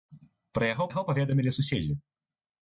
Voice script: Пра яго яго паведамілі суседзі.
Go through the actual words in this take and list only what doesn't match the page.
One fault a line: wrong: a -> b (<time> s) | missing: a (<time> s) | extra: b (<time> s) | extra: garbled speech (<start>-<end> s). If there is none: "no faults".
no faults